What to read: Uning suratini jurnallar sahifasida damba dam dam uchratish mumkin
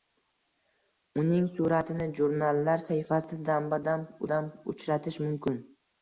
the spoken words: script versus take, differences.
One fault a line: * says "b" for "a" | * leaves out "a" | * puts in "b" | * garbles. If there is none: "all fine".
all fine